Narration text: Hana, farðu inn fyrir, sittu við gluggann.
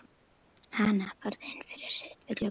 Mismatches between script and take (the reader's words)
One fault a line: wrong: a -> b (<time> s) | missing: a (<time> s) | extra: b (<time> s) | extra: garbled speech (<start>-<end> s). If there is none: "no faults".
no faults